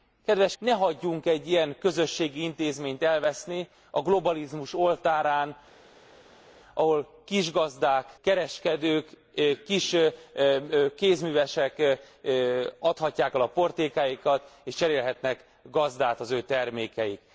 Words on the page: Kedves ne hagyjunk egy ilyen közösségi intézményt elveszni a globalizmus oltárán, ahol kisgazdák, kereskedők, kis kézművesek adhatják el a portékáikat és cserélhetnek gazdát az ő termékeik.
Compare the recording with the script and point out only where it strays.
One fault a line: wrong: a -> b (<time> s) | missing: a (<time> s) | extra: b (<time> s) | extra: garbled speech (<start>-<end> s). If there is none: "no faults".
no faults